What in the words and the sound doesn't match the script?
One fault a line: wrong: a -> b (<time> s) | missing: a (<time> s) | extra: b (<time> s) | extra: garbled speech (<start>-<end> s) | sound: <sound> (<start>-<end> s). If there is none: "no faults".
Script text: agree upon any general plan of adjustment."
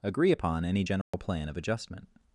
sound: dropout (1.0-1.1 s)